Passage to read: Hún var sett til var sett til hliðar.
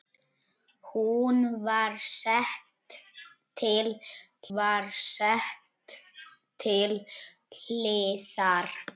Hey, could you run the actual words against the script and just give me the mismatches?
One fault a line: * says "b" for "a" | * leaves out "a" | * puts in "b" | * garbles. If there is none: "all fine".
all fine